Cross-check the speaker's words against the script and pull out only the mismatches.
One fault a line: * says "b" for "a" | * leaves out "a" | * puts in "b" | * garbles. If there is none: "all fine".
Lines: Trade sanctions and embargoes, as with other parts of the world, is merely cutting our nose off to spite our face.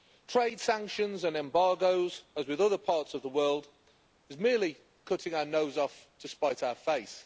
all fine